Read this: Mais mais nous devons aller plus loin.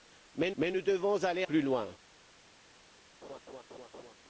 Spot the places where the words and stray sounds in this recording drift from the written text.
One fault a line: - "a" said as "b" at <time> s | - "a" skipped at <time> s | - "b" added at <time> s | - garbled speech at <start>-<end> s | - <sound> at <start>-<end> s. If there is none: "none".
- laugh at 3.2-4.1 s